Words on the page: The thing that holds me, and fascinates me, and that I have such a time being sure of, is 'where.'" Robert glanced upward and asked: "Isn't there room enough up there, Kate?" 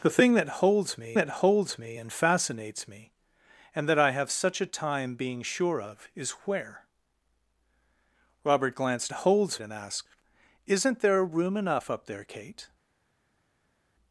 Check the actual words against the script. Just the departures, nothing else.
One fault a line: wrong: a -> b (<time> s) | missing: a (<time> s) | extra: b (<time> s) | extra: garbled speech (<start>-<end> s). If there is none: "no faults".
extra: that holds me (1.1 s)
wrong: upward -> holds (9.1 s)